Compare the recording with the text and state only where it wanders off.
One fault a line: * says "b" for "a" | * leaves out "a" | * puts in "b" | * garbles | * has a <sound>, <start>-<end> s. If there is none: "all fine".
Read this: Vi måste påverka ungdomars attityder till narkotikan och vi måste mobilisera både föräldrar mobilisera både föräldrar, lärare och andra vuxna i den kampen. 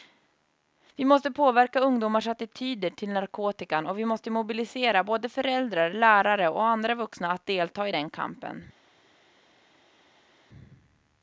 * leaves out "mobilisera både föräldrar"
* puts in "att delta"